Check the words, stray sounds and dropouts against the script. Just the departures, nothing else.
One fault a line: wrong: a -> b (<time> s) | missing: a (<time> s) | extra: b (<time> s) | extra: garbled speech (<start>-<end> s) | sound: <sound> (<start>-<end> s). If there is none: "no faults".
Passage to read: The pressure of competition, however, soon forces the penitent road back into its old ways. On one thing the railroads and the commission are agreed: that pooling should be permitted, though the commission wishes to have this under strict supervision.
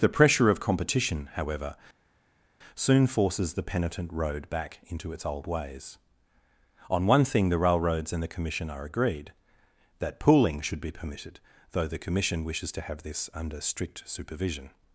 no faults